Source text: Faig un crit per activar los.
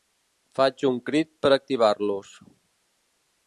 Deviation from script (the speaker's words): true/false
false